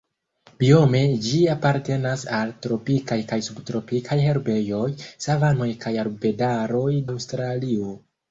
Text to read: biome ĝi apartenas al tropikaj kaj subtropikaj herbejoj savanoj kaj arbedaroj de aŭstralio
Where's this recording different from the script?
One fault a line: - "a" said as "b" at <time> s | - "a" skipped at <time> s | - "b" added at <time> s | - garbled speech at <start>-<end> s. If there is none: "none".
- "de" skipped at 6.9 s